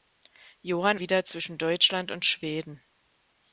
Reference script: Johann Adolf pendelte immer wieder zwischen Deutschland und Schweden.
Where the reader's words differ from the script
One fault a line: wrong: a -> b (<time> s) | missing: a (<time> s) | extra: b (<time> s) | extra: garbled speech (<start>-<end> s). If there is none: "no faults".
missing: Adolf pendelte immer (1.0 s)